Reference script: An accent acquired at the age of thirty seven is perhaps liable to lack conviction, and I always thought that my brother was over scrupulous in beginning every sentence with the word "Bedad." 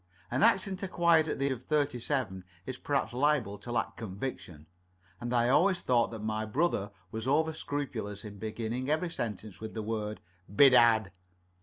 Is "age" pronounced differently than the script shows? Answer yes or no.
yes